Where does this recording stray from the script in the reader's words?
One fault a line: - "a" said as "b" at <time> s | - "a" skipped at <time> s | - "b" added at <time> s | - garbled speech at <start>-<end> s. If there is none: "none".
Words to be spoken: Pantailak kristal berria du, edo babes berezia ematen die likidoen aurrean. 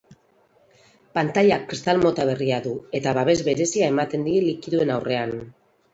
- "mota" added at 2.0 s
- "edo" said as "eta" at 3.0 s